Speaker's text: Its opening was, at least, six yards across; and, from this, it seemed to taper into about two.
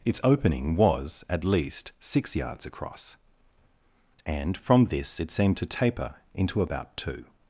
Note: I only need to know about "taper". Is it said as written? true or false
true